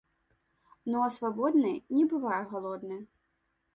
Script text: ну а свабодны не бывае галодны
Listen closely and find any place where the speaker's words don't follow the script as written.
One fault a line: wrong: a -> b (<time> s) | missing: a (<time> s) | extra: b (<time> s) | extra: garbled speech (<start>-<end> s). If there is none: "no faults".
no faults